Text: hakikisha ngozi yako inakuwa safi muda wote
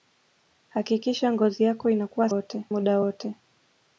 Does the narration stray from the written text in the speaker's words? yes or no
yes